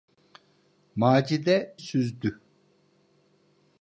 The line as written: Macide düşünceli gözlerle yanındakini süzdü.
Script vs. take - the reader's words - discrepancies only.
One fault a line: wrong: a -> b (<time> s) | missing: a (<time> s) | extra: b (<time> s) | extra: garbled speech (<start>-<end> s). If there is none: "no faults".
missing: düşünceli gözlerle yanındakini (1.8 s)